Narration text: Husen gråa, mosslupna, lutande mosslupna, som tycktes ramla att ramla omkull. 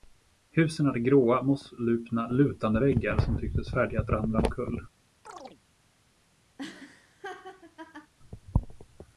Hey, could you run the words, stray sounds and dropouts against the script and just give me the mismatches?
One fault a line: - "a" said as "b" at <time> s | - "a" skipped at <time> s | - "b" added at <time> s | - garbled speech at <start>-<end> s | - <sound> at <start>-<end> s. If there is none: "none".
- "hade" added at 0.8 s
- "mosslupna" said as "väggar" at 2.8 s
- "ramla" said as "färdiga" at 3.7 s
- chirp at 5.3-5.6 s
- laugh at 6.6-8.1 s